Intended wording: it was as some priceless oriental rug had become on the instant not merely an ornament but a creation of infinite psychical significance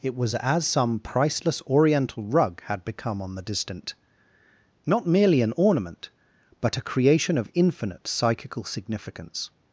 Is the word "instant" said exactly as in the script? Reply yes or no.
no